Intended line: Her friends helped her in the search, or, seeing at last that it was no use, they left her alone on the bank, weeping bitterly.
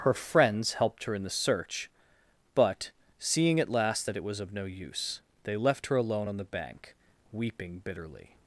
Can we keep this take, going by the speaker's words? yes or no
no